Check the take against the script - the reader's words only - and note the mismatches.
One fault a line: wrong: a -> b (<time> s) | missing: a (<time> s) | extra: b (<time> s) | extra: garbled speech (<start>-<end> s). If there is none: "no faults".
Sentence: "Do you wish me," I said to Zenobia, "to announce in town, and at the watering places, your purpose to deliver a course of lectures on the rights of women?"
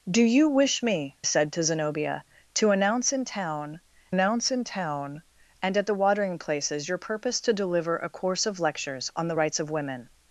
missing: I (1.1 s)
extra: announce in town (4.1 s)